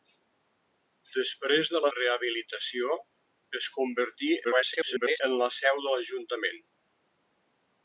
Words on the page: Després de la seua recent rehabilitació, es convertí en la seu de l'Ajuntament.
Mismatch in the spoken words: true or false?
true